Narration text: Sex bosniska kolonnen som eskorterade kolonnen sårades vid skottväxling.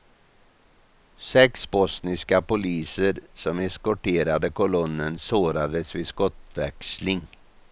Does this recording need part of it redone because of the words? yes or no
yes